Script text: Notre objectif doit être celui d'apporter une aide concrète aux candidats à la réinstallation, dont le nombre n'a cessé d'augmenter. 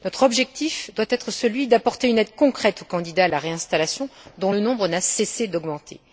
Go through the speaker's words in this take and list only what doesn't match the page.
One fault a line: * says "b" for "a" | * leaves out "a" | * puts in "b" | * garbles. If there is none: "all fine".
all fine